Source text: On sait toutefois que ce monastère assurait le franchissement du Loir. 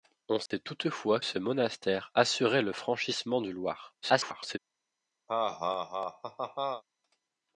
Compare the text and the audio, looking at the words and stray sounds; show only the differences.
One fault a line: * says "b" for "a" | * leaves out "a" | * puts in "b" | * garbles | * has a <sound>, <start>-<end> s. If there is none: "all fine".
* has a dropout, 0.5-0.5 s
* leaves out "que"
* garbles
* has a laugh, 5.3-6.8 s